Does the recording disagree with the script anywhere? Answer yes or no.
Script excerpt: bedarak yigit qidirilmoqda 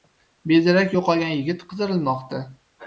yes